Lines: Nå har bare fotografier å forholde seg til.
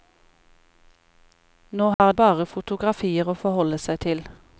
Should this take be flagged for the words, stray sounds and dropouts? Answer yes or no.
yes